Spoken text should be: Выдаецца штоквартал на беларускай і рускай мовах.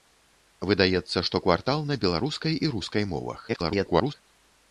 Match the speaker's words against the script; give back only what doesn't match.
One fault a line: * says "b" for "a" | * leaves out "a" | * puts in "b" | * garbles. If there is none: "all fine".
* garbles